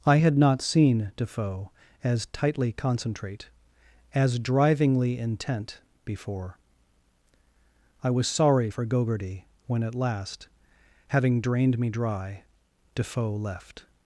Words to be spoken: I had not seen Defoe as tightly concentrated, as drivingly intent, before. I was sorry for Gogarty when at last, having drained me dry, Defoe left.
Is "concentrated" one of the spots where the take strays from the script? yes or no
yes